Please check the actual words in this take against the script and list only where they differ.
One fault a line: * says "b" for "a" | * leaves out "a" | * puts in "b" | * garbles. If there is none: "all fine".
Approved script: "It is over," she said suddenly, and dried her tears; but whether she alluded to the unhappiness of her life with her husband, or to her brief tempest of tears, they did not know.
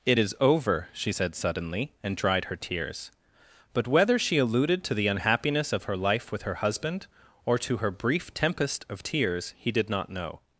* says "he" for "they"